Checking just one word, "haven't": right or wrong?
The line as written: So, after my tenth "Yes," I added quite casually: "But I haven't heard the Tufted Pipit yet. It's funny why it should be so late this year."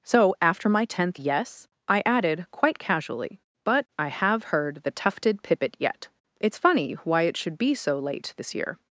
wrong